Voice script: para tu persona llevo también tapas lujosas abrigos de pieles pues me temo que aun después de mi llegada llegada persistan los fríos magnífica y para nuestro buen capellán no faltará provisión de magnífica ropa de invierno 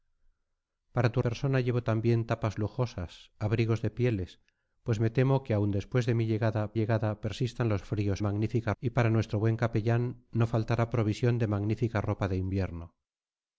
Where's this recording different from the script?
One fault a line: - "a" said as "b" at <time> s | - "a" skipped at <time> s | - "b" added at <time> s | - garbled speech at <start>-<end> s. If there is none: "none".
none